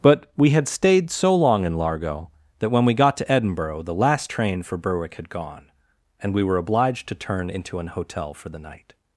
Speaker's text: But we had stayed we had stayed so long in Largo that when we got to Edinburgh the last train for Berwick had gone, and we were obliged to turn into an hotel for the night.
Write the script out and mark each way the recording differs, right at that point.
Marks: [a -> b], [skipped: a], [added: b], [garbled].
But we had stayed [skipped: we had stayed] so long in Largo that when we got to Edinburgh the last train for Berwick had gone, and we were obliged to turn into an hotel for the night.